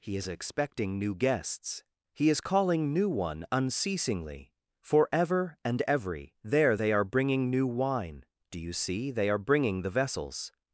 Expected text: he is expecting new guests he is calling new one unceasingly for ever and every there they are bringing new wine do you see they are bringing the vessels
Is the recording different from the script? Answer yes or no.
no